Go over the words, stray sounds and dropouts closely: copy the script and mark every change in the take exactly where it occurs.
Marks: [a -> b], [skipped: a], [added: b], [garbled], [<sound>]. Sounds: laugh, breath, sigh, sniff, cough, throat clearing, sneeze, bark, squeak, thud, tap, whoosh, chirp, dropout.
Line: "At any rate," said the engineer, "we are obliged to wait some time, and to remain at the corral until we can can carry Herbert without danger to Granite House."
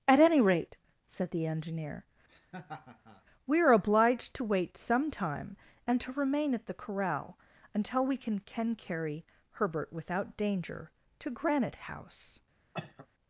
"At any rate," said the engineer, [laugh] "we are obliged to wait some time, and to remain at the corral until we can can carry Herbert without danger to Granite House." [cough]